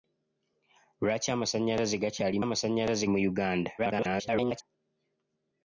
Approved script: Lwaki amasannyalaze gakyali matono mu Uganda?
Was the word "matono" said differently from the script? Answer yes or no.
yes